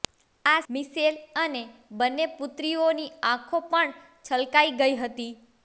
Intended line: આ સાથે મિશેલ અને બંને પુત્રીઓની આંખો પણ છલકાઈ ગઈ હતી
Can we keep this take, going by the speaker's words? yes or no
no